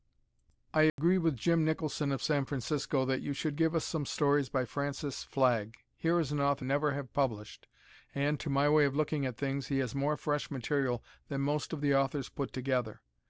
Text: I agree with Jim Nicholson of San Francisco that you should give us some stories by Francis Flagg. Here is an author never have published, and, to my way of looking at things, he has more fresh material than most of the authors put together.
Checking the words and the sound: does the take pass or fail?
fail